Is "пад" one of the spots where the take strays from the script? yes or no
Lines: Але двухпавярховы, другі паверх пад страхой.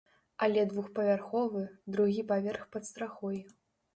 no